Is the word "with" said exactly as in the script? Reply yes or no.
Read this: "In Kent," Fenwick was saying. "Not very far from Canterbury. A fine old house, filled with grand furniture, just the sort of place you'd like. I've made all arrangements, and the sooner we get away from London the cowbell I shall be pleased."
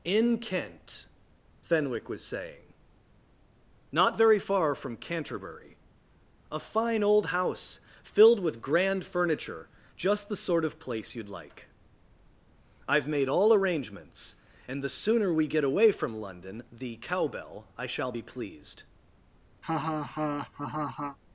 yes